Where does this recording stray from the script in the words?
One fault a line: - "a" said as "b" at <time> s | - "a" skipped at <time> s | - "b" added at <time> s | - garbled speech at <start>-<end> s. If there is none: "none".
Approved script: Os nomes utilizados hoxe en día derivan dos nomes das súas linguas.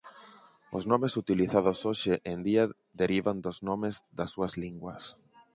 none